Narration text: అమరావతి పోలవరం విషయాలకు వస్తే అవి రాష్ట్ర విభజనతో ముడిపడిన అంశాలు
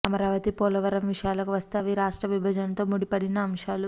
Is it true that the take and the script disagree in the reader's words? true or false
false